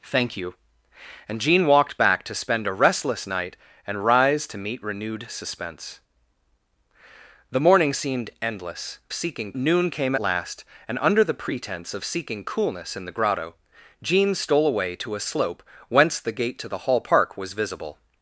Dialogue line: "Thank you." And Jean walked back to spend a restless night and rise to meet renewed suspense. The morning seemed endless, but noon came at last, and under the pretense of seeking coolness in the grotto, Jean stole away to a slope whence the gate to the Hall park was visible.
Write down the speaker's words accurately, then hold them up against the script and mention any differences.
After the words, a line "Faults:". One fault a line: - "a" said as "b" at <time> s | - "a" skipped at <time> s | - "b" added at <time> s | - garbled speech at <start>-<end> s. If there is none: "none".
"Thank you." And Jean walked back to spend a restless night and rise to meet renewed suspense. The morning seemed endless, seeking noon came last, and under the pretense of seeking coolness in the grotto, Jean stole away to a slope whence the gate to the Hall park was visible.
Faults:
- "but" said as "seeking" at 9.1 s
- "at" skipped at 10.1 s